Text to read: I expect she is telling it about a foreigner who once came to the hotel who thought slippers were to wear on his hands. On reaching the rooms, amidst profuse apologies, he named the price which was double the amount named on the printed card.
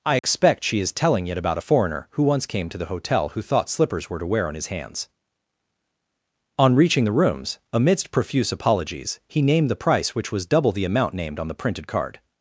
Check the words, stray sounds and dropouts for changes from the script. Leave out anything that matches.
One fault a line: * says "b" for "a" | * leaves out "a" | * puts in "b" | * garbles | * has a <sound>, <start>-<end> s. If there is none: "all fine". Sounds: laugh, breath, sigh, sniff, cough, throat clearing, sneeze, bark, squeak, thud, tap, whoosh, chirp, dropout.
* has a dropout, 0.2-0.2 s